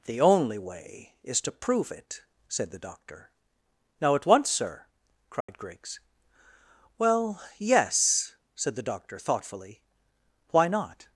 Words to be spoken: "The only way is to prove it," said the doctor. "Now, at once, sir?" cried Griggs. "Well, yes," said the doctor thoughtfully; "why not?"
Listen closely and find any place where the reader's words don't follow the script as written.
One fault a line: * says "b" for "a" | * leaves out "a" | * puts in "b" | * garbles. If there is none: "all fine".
all fine